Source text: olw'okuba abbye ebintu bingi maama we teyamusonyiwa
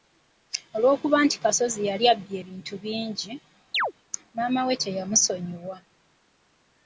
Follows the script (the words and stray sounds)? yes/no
no